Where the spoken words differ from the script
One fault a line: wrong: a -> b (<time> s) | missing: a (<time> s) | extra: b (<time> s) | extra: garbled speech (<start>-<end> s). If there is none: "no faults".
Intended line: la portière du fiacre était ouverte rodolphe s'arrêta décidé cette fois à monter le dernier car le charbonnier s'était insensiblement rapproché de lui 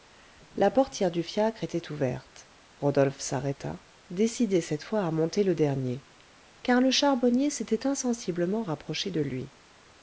no faults